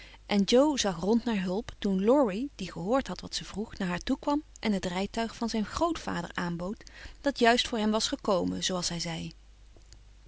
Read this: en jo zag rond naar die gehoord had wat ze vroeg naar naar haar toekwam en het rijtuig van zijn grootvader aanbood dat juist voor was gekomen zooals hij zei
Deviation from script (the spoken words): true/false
true